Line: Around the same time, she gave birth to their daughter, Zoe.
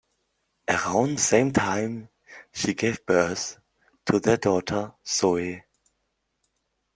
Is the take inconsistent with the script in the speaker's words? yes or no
yes